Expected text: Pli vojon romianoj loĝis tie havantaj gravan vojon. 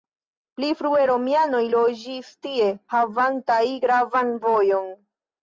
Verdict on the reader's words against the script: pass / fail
fail